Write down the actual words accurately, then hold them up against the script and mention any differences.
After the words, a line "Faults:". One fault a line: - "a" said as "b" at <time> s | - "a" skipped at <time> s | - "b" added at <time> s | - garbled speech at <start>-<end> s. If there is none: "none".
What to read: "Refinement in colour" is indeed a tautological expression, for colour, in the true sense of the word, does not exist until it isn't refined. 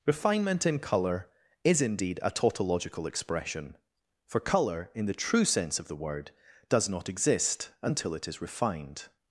"Refinement in colour" is indeed a tautological expression, for colour, in the true sense of the word, does not exist until it is refined.
Faults:
- "isn't" said as "is" at 8.3 s